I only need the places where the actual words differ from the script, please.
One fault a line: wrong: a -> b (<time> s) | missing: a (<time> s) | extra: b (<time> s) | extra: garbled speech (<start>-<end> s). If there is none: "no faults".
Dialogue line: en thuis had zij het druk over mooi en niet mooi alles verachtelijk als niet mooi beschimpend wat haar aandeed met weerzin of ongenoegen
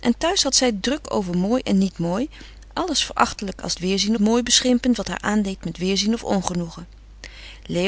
wrong: niet -> weerzin (3.8 s)